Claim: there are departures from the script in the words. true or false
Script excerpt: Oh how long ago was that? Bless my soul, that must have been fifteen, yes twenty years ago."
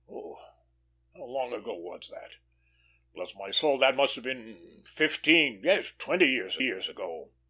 true